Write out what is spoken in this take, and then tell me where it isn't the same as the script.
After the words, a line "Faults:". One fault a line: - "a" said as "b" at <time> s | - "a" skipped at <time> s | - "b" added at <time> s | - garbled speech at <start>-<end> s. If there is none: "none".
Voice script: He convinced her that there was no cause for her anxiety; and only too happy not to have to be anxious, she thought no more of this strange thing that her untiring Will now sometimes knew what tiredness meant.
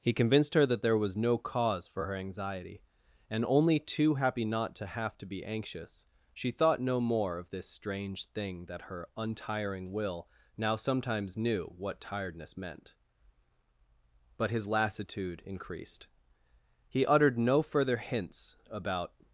He convinced her that there was no cause for her anxiety; and only too happy not to have to be anxious, she thought no more of this strange thing that her untiring Will now sometimes knew what tiredness meant. But his lassitude increased. He uttered no further hints about
Faults:
- "But his lassitude increased He uttered no further hints about" added at 14.4 s